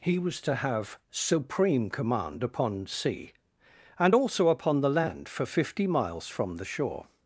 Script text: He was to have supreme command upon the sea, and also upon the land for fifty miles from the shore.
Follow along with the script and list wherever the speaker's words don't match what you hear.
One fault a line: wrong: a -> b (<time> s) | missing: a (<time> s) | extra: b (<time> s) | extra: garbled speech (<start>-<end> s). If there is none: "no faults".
missing: the (2.9 s)